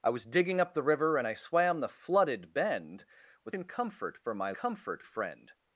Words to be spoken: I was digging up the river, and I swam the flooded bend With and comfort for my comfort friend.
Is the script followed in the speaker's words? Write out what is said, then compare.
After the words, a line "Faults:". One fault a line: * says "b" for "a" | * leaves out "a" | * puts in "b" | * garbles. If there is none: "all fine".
I was digging up the river, and I swam the flooded bend With and comfort for my comfort friend.
Faults:
all fine